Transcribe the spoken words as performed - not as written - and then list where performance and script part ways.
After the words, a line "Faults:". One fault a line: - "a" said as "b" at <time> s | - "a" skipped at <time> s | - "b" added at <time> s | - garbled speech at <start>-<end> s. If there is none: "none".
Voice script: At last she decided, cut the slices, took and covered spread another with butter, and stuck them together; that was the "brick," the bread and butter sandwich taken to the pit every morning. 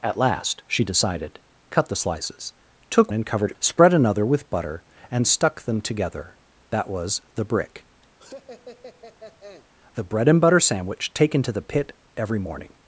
At last she decided, cut the slices, took and covered spread another with butter, and stuck them together; that was the "brick," the bread and butter sandwich taken to the pit every morning.
Faults:
none